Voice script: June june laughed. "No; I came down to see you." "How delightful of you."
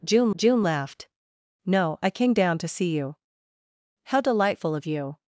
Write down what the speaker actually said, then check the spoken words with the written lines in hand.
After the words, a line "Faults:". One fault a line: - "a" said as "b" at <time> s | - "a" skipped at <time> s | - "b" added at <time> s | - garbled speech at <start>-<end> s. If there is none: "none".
June june laughed. "No; I came down to see you." "How delightful of you."
Faults:
none